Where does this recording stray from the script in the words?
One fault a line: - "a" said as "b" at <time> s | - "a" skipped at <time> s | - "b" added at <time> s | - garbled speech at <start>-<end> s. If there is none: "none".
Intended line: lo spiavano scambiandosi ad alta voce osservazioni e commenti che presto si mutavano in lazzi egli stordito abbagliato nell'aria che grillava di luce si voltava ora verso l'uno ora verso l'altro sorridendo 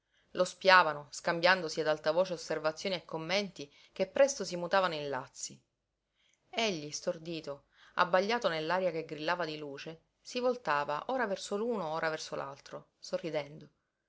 none